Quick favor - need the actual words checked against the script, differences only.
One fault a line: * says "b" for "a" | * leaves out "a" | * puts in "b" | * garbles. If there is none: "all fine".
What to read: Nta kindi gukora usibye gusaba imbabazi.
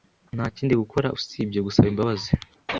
all fine